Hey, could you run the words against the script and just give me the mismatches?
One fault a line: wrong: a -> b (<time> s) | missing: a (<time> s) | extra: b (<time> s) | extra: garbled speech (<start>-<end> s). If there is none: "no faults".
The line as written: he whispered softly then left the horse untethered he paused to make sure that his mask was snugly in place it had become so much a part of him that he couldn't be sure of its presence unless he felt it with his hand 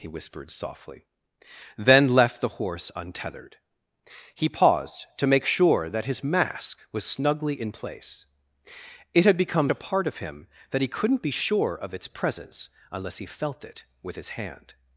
missing: so much (9.7 s)